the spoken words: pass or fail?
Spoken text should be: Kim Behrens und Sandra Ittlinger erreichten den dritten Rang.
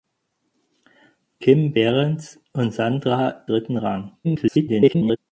fail